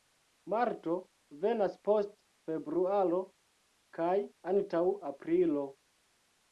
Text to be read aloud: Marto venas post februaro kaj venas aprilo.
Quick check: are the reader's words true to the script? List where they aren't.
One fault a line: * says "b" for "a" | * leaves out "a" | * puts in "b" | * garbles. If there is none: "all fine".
* says "antaŭ" for "venas"